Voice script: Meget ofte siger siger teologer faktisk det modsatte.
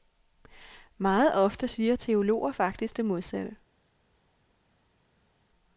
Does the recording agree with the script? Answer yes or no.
no